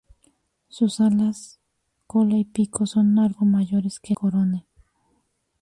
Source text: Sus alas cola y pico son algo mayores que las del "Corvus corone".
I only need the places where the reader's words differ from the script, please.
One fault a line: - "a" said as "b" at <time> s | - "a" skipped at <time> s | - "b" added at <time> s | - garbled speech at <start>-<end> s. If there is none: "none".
- "las del Corvus" skipped at 4.2 s